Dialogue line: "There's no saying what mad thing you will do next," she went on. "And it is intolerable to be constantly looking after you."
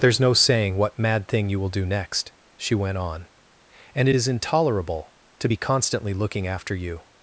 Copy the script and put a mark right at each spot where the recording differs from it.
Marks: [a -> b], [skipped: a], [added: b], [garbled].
"There's no saying what mad thing you will do next," she went on. "And it is intolerable to be constantly looking after you."